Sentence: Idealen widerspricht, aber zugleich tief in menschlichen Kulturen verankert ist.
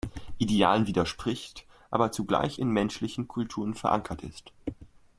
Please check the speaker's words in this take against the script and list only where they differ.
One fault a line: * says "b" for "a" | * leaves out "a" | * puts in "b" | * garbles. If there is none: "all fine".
* leaves out "tief"